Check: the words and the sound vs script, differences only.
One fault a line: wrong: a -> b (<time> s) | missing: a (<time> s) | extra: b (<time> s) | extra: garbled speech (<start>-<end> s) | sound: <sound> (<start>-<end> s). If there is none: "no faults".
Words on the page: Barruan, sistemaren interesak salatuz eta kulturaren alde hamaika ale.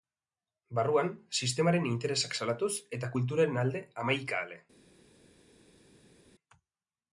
no faults